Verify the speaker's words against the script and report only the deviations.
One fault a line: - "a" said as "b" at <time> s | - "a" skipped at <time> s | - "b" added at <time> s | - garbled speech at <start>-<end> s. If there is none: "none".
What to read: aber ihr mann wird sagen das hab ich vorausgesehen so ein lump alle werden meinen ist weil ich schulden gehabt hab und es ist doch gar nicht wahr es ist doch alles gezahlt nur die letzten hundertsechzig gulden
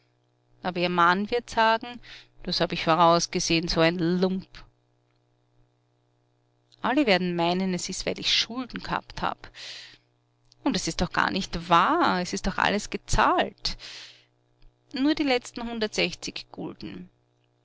- "es" added at 7.8 s